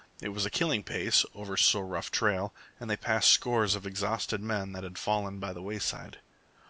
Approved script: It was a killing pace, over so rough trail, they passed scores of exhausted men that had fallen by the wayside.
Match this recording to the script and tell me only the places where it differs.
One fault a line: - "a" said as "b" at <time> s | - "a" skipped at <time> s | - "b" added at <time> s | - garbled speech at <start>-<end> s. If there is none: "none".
- "and" added at 2.8 s